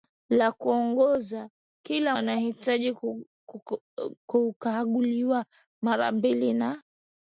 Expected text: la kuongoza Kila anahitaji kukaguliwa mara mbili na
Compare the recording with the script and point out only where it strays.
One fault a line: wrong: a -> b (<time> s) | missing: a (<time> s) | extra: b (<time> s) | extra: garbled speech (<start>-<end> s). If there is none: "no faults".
no faults